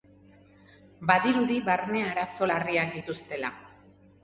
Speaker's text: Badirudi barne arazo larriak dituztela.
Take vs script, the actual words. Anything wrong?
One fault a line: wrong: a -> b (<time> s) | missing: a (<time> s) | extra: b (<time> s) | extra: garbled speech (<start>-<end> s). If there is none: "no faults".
no faults